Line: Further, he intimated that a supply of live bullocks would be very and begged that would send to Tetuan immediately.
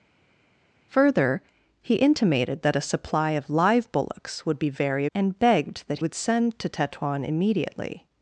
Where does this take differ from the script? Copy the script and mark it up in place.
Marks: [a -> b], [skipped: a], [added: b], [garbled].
Further, he intimated that a supply of live bullocks would be very and begged that would send to Tetuan immediately.